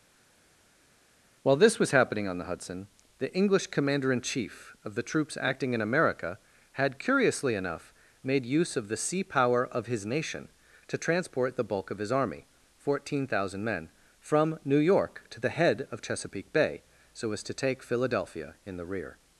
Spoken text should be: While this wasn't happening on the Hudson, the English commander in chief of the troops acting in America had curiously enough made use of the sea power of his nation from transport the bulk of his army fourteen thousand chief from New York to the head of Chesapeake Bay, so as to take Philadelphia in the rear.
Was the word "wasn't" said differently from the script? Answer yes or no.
yes